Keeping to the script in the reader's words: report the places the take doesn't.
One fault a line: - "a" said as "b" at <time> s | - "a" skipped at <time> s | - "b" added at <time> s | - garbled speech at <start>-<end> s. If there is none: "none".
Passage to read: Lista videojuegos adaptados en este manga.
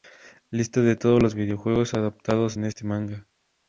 - "de todos los" added at 0.8 s